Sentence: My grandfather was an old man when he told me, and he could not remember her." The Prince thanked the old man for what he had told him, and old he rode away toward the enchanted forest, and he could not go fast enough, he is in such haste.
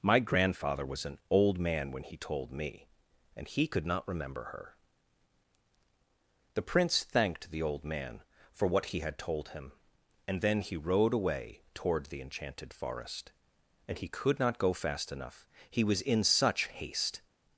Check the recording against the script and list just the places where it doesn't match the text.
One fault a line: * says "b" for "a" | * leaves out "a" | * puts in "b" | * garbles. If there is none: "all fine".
* says "then" for "old"
* says "was" for "is"